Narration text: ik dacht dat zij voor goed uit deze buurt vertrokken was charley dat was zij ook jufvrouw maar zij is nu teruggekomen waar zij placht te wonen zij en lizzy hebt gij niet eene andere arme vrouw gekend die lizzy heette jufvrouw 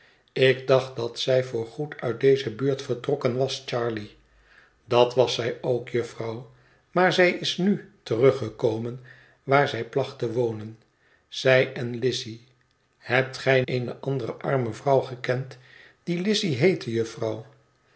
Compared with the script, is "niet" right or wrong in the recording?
wrong